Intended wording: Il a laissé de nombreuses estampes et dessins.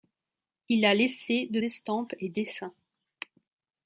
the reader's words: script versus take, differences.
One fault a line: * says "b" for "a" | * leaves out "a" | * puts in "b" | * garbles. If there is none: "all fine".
* leaves out "nombreuses"